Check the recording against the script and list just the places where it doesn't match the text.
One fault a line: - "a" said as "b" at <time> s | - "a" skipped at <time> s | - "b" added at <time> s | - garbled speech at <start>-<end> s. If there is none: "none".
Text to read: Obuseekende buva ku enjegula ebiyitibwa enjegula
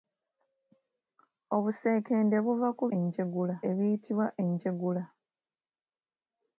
none